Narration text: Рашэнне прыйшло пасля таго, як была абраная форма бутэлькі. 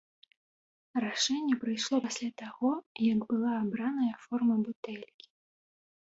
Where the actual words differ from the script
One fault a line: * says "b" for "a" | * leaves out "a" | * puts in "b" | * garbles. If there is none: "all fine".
all fine